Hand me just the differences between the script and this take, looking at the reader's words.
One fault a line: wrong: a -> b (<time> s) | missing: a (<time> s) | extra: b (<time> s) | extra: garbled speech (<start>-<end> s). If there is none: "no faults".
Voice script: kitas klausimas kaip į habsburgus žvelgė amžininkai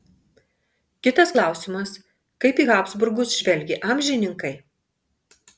no faults